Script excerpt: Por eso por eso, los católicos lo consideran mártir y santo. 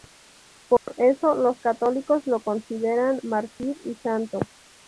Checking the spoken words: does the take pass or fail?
fail